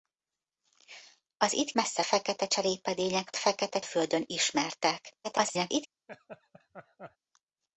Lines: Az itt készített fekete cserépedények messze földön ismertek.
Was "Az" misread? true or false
false